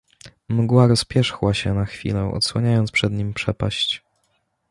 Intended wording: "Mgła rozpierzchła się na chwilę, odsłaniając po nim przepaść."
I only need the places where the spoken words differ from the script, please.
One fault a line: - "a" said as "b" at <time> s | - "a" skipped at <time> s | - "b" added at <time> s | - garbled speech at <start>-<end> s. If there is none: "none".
- "po" said as "przed" at 2.9 s